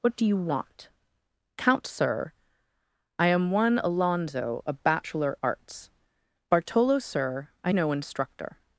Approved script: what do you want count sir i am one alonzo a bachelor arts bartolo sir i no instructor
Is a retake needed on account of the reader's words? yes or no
no